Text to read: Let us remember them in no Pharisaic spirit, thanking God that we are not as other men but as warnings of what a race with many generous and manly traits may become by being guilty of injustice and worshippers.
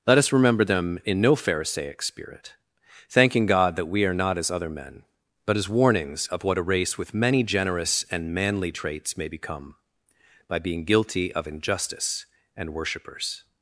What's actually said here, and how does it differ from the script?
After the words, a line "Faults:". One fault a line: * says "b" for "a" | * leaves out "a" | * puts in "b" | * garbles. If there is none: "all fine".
Let us remember them in no Pharisaic spirit, thanking God that we are not as other men but as warnings of what a race with many generous and manly traits may become by being guilty of injustice and worshippers.
Faults:
all fine